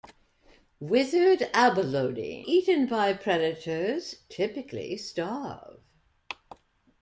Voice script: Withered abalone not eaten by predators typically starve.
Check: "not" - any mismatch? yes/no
yes